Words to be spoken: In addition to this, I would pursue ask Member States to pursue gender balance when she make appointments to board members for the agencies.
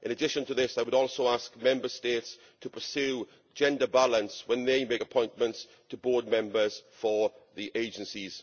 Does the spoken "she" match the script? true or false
false